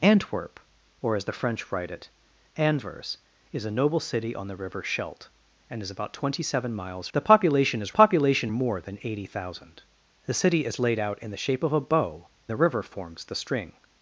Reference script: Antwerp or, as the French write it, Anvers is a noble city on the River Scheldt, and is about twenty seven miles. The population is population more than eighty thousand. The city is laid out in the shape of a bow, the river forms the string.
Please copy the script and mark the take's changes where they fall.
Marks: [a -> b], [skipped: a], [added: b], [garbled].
Antwerp or, as the French write it, Anvers is a noble city on the River Scheldt, and is about twenty seven miles. The population is population more than eighty thousand. The city is laid out in the shape of a bow, the river forms the string.